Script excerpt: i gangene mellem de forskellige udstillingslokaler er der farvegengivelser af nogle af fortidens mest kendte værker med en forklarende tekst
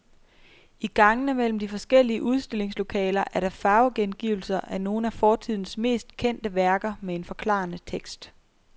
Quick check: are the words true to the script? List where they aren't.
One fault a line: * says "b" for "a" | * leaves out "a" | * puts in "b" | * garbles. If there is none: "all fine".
all fine